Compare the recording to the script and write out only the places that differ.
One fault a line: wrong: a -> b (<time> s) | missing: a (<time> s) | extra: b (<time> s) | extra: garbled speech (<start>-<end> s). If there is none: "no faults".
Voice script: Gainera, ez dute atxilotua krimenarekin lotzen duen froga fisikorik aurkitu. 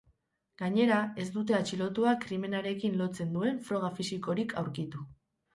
no faults